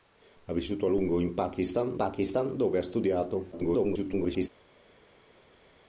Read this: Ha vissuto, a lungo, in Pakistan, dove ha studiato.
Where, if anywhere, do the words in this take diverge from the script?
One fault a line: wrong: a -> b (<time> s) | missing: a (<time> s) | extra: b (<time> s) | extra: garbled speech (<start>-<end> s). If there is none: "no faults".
extra: Pakistan (2.0 s)
extra: garbled speech (3.5-4.5 s)